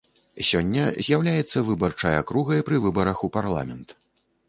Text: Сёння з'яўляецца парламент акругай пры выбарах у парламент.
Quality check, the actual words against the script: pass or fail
fail